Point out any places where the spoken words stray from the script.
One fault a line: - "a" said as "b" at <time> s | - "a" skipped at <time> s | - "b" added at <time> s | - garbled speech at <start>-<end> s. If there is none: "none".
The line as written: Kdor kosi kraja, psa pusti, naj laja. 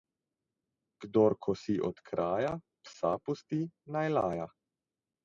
- "od" added at 1.9 s